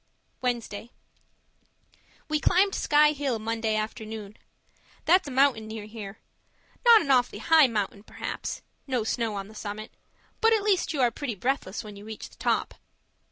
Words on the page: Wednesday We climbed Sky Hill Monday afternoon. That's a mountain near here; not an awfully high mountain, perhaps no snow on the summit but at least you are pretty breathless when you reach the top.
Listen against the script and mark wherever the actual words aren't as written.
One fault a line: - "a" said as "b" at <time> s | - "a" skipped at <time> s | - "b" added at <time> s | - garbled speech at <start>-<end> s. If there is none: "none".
none